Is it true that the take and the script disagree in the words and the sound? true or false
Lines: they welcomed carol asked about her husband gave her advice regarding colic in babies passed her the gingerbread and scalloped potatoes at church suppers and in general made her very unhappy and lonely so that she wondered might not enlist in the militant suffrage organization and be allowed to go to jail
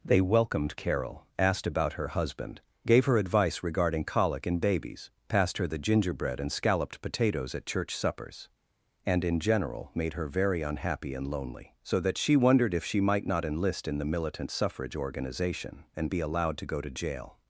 true